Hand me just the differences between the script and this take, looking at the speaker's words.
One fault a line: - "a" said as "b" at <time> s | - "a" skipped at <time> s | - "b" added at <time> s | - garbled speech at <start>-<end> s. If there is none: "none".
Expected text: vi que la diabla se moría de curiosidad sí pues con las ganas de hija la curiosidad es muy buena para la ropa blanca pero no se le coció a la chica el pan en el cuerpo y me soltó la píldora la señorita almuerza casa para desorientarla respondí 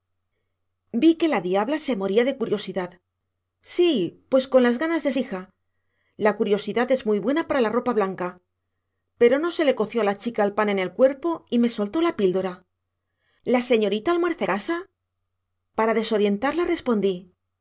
none